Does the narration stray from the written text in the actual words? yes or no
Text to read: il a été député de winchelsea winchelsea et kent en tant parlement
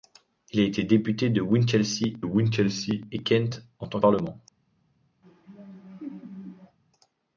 no